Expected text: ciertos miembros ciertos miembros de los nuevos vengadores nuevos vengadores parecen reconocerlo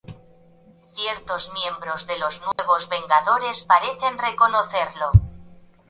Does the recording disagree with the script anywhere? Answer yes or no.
yes